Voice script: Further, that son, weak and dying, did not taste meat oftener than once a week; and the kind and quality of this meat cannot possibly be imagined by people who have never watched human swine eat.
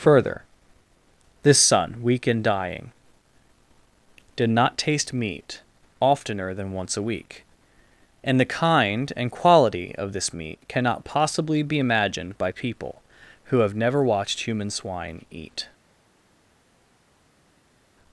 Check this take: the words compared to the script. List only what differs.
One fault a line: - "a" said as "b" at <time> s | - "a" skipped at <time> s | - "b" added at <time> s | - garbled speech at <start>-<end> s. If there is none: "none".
- "that" said as "this" at 1.4 s